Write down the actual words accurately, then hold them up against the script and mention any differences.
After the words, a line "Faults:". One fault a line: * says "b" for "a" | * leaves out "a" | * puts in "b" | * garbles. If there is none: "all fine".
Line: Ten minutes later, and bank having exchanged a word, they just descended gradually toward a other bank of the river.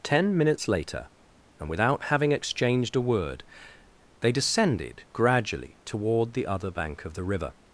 Ten minutes later, and without having exchanged a word, they descended gradually toward the other bank of the river.
Faults:
* says "without" for "bank"
* leaves out "just"
* says "the" for "a"